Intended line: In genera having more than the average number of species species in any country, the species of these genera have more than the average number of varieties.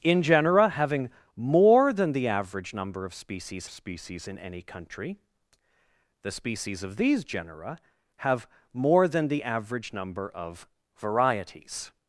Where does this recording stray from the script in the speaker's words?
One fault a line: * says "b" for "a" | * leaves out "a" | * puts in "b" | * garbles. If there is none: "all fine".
all fine